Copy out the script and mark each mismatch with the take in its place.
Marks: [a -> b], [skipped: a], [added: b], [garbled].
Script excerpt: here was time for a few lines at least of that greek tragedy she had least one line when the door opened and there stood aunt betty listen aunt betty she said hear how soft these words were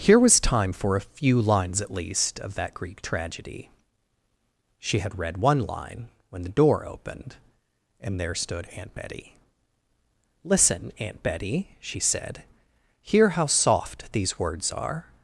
here was time for a few lines at least of that greek tragedy she had [least -> read] one line when the door opened and there stood aunt betty listen aunt betty she said hear how soft these words [were -> are]